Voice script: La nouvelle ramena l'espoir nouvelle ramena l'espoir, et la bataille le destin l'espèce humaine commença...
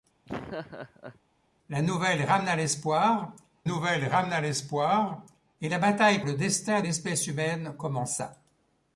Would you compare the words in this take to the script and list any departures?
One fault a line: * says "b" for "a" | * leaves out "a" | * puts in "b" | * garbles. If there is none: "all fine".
all fine